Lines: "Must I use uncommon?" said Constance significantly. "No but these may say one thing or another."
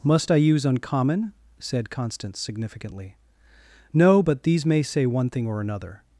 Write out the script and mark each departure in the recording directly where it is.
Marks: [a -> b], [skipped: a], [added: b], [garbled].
"Must I use uncommon?" said Constance significantly. "No but these may say one thing or another."